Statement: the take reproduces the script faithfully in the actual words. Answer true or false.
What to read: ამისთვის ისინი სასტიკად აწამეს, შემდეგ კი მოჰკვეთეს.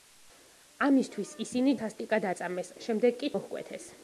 true